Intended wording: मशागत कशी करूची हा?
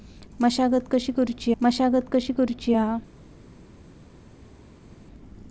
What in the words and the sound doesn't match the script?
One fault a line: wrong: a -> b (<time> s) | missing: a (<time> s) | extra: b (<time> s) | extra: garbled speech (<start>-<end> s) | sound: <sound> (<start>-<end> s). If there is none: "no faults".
extra: मशागत कशी करूची (1.6 s)